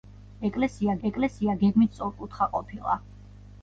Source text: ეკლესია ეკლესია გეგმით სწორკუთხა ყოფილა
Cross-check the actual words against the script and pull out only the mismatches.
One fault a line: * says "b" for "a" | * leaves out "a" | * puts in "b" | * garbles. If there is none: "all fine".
all fine